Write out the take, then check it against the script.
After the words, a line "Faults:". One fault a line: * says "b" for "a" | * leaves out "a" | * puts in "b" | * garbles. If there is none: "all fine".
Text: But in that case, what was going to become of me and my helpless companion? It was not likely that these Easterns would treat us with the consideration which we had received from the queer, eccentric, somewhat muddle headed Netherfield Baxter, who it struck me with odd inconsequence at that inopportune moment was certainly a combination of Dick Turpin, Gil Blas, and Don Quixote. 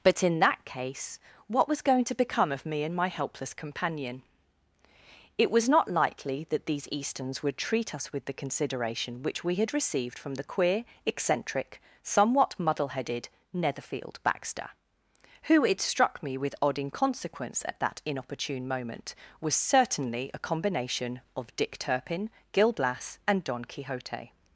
But in that case, what was going to become of me and my helpless companion? It was not likely that these Easterns would treat us with the consideration which we had received from the queer, eccentric, somewhat muddle headed Netherfield Baxter, who it struck me with odd inconsequence at that inopportune moment was certainly a combination of Dick Turpin, Gil Blas, and Don Quixote.
Faults:
all fine